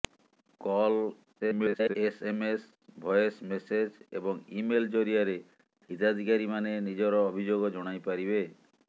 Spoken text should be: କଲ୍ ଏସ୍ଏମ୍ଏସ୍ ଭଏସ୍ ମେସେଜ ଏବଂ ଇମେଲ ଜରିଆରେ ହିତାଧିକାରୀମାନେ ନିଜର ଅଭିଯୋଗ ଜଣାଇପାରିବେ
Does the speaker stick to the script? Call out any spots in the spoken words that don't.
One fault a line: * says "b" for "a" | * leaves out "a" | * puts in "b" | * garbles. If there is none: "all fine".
* garbles